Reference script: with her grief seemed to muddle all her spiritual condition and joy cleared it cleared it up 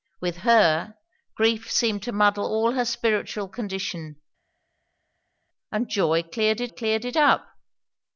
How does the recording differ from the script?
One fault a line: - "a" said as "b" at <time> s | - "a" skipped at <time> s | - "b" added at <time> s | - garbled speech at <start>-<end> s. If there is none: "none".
none